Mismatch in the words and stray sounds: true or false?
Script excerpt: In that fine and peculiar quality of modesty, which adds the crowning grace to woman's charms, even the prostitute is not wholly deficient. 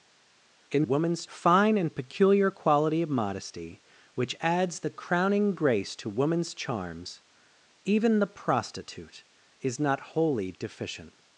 true